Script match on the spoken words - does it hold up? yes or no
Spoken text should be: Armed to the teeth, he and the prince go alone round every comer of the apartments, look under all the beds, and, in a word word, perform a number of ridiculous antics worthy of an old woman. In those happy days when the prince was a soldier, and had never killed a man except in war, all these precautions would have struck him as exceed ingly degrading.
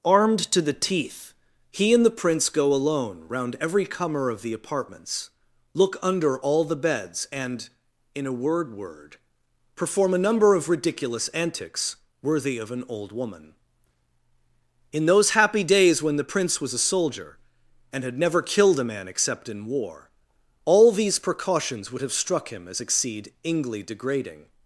yes